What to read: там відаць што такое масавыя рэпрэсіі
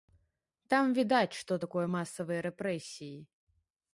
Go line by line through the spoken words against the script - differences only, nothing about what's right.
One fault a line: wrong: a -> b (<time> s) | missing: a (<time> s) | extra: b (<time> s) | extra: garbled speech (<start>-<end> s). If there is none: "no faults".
no faults